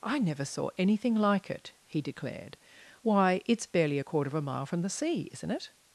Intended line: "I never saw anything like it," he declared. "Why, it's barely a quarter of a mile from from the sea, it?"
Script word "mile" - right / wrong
right